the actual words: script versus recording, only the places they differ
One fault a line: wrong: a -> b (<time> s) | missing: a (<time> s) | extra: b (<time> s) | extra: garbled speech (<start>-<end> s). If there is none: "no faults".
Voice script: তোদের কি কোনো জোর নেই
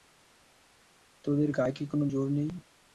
extra: গায়ে (1.5 s)